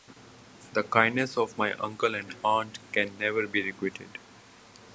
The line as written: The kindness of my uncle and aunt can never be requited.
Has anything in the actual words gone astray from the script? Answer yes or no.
no